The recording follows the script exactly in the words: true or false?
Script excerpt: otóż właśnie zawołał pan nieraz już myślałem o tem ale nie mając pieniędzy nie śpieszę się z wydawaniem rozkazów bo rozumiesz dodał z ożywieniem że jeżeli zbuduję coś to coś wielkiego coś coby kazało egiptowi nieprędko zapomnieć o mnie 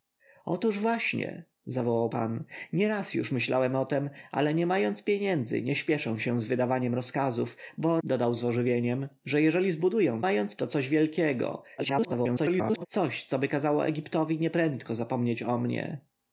false